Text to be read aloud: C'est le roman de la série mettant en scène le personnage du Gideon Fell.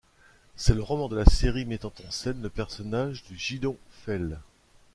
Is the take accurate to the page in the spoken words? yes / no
yes